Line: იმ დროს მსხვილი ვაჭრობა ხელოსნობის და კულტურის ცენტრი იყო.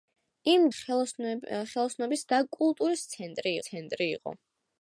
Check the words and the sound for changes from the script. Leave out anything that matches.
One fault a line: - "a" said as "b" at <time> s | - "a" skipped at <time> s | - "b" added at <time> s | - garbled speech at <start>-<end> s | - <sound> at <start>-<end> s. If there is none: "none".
- "დროს მსხვილი ვაჭრობა" skipped at 0.6 s
- "ცენტრი" added at 3.7 s